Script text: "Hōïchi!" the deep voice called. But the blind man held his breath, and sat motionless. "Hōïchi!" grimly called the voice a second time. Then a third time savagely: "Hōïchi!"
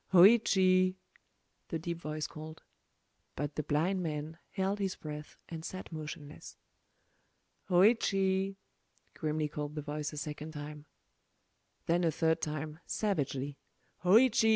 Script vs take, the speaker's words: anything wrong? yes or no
no